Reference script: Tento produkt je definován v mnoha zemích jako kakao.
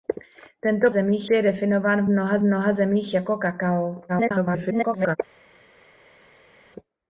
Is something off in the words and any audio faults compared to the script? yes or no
yes